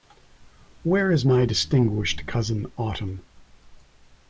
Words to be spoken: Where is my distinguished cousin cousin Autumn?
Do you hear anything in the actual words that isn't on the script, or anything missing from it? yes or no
yes